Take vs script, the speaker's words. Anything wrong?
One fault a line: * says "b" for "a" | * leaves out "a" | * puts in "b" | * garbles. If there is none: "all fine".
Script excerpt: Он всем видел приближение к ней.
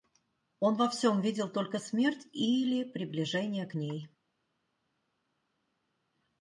* puts in "во"
* puts in "только смерть или"